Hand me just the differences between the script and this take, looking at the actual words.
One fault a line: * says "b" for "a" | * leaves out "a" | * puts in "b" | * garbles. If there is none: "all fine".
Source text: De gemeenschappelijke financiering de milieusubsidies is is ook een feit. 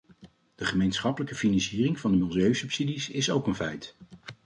* puts in "van"
* leaves out "is"